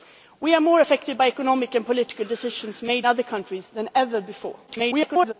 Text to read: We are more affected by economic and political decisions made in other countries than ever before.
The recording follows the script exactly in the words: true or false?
false